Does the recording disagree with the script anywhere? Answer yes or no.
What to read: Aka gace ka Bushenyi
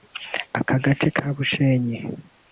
no